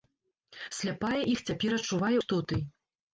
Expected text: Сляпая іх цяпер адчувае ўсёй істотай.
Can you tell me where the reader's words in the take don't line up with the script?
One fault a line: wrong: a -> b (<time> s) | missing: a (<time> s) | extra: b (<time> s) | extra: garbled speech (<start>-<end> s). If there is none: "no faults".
missing: ўсёй (2.1 s)